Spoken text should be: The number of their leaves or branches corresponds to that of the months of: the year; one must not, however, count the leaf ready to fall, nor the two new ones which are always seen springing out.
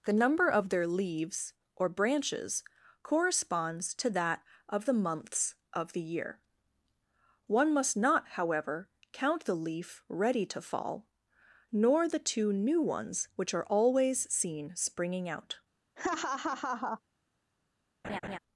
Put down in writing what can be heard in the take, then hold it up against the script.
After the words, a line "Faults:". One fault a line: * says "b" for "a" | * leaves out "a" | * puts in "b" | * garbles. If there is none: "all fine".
The number of their leaves or branches corresponds to that of the months of: the year; one must not, however, count the leaf ready to fall, nor the two new ones which are always seen springing out.
Faults:
all fine